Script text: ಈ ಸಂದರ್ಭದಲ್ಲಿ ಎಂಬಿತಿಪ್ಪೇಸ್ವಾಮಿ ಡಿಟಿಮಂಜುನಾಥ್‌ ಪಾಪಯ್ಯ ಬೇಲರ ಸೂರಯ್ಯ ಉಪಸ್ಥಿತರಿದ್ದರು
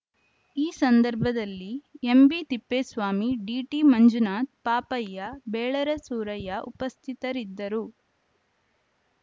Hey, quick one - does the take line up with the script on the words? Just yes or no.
yes